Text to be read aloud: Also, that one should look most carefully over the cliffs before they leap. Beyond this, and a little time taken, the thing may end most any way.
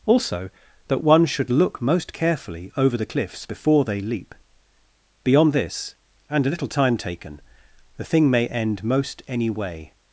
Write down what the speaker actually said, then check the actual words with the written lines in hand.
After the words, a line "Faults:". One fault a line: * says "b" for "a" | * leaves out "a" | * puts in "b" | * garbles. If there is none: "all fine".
Also, that one should look most carefully over the cliffs before they leap. Beyond this, and a little time taken, the thing may end most any way.
Faults:
all fine